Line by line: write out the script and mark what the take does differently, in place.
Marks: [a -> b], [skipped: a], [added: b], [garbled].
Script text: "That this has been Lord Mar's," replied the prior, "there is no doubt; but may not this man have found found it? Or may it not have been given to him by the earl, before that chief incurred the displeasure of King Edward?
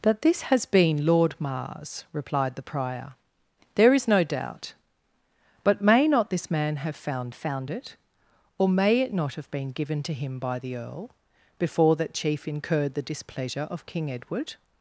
"That this has been Lord Mar's," replied the prior, "there is no doubt; but may not this man have found found it? Or may it not have been given to him by the earl, before that chief incurred the displeasure of King Edward?